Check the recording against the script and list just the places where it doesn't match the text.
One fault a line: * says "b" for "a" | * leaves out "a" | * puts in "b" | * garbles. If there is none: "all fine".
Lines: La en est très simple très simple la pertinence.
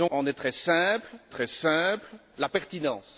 all fine